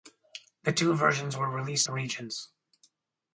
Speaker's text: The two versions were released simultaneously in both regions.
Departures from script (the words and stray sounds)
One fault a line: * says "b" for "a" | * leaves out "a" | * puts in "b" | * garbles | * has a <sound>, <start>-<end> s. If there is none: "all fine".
* leaves out "simultaneously in both"